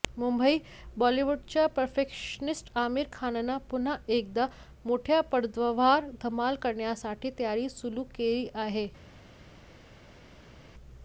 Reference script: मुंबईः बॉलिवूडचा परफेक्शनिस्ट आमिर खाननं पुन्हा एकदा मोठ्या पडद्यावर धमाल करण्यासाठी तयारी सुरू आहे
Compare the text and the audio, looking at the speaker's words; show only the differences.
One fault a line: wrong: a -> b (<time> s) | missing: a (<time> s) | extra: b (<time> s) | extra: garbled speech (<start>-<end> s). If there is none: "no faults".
extra: केली (8.2 s)